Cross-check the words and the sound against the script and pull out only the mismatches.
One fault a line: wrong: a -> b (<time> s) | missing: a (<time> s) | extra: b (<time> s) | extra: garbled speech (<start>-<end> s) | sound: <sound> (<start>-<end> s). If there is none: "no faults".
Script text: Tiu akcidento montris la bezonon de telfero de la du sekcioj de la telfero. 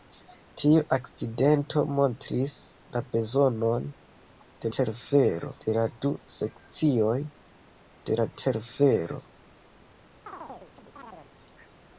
sound: chirp (10.3-11.3 s)